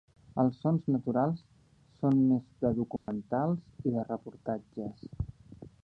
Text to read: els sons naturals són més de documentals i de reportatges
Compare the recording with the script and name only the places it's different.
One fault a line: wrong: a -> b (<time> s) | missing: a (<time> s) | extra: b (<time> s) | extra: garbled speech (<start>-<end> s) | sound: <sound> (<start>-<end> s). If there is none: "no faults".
sound: dropout (3.0-3.1 s)